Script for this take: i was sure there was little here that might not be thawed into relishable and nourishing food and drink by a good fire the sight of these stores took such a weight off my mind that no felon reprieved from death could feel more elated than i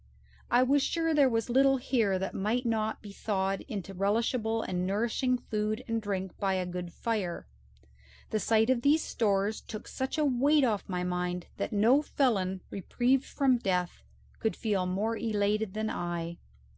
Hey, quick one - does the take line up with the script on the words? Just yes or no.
yes